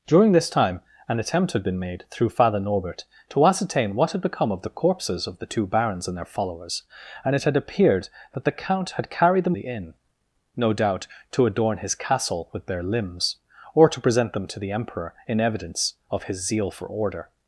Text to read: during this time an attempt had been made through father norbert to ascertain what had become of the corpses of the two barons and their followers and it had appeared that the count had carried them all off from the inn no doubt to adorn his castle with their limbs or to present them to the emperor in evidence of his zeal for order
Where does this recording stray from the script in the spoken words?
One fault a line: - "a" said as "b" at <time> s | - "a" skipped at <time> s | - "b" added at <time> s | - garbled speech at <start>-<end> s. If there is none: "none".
- "all off from" skipped at 9.6 s